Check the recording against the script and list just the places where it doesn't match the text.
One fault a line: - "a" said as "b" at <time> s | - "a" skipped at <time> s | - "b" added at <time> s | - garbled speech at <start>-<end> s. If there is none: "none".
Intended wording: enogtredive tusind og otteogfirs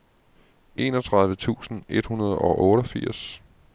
- "et hundrede" added at 1.9 s